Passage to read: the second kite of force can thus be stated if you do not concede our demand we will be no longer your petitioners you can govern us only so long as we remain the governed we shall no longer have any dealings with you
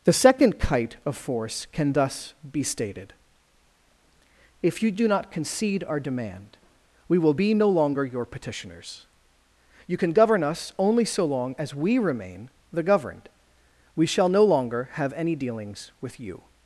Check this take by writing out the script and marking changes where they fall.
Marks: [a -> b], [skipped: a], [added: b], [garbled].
the second kite of force can thus be stated if you do not concede our demand we will be no longer your petitioners you can govern us only so long as we remain the governed we shall no longer have any dealings with you